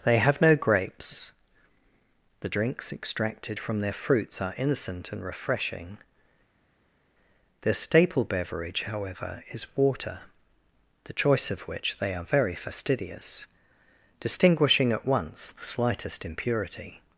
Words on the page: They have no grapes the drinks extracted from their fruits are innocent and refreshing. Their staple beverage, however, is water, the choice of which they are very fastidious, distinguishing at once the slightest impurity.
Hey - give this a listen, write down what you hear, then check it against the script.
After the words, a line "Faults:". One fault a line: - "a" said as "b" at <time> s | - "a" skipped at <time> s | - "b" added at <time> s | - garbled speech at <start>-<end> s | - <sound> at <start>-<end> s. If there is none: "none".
They have no grapes the drinks extracted from their fruits are innocent and refreshing. Their staple beverage, however, is water, the choice of which they are very fastidious, distinguishing at once the slightest impurity.
Faults:
none